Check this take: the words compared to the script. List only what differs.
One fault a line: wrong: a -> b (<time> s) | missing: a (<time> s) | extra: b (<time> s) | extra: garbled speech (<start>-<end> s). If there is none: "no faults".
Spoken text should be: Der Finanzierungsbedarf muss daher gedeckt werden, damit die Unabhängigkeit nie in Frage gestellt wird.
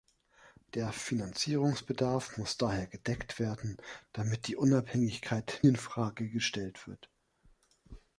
missing: nie (5.6 s)